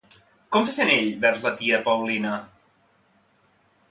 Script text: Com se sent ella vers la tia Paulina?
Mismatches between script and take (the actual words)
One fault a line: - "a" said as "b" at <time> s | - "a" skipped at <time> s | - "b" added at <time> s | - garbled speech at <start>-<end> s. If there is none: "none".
- "ella" said as "ell" at 0.9 s